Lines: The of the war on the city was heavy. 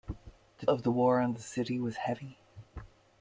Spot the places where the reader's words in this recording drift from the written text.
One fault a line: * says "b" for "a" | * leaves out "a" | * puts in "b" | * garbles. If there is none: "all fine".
all fine